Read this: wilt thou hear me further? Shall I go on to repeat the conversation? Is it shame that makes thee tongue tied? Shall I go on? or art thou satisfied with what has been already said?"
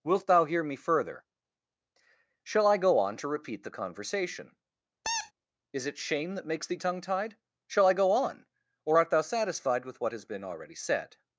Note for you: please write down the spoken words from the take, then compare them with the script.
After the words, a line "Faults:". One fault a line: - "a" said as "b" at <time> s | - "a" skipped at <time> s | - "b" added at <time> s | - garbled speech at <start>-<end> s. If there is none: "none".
wilt thou hear me further? Shall I go on to repeat the conversation? Is it shame that makes thee tongue tied? Shall I go on? or art thou satisfied with what has been already said?"
Faults:
none